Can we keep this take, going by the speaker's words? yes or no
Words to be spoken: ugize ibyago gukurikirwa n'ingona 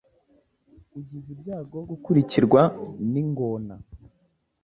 yes